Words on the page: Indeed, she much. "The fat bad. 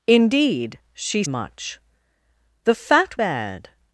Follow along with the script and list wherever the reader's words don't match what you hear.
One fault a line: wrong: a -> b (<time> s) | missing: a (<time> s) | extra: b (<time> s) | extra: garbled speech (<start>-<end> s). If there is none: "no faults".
no faults